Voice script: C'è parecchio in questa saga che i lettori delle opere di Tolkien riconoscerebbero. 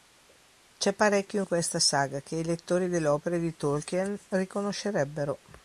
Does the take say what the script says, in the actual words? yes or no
yes